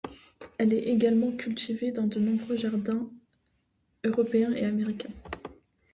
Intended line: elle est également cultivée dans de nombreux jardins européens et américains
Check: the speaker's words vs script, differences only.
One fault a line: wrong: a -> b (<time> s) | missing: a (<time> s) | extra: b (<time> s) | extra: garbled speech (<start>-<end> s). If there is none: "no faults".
no faults